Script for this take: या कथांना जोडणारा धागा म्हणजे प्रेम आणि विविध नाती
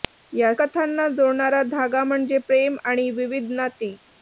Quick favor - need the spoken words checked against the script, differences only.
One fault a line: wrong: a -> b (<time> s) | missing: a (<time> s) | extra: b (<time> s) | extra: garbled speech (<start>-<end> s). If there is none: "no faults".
no faults